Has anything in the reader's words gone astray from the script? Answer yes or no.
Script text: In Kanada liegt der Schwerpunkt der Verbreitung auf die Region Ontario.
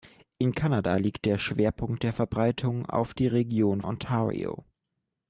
no